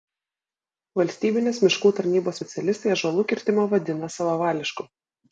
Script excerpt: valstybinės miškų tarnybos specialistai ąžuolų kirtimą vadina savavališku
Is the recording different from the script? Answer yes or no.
no